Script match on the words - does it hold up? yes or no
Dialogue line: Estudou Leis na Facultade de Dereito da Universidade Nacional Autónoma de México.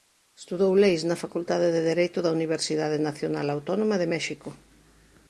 yes